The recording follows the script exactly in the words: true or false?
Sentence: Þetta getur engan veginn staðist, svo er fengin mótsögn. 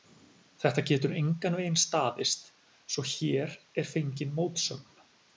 false